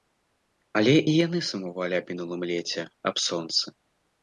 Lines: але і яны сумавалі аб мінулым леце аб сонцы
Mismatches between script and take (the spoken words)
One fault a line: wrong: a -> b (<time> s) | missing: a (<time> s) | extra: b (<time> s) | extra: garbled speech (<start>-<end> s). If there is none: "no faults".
no faults